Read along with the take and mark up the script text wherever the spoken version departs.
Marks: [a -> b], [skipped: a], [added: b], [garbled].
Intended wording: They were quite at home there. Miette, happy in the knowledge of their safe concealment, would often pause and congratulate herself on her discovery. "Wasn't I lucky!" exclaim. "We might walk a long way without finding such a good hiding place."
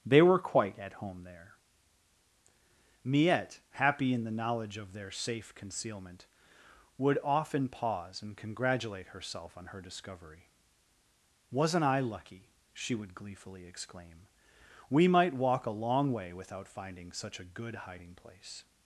They were quite at home there. Miette, happy in the knowledge of their safe concealment, would often pause and congratulate herself on her discovery. "Wasn't I lucky!" [added: she would gleefully] exclaim. "We might walk a long way without finding such a good hiding place."